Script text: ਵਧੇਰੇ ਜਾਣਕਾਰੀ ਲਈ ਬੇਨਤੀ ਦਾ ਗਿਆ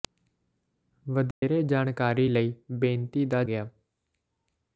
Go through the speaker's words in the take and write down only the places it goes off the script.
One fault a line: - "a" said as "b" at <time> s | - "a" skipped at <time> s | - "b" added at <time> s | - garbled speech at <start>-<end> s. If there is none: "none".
none